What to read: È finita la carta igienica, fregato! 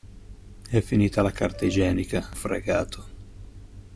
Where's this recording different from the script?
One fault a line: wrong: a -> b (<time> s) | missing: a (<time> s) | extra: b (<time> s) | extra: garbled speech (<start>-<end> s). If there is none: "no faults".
no faults